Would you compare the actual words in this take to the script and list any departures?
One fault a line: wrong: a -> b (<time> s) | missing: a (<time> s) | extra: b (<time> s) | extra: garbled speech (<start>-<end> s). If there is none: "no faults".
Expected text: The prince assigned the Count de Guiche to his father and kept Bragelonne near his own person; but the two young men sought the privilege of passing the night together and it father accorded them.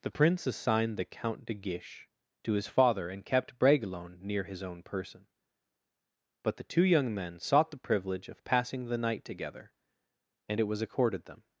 wrong: father -> was (10.6 s)